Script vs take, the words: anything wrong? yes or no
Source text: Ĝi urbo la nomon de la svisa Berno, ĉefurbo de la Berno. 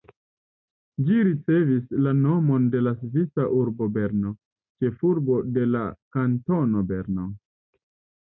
yes